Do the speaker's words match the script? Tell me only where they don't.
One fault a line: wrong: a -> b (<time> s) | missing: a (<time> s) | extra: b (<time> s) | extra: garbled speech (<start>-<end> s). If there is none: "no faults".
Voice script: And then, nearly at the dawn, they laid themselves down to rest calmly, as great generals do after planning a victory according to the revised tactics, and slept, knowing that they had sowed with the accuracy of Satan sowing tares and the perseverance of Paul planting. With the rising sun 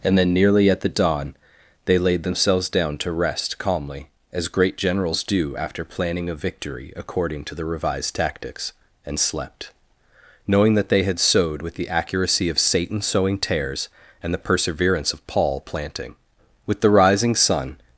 no faults